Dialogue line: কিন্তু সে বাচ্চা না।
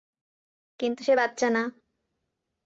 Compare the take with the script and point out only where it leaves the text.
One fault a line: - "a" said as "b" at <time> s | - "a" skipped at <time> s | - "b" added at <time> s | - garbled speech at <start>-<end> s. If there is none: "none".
none